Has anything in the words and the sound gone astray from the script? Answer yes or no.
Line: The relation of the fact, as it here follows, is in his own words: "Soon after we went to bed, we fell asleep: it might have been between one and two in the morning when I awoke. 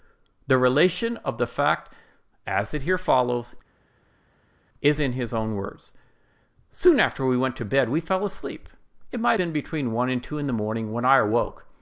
yes